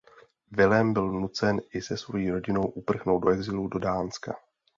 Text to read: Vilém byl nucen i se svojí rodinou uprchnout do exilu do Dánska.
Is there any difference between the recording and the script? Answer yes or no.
no